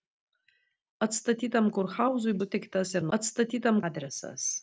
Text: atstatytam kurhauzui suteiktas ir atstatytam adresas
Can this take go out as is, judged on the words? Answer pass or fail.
pass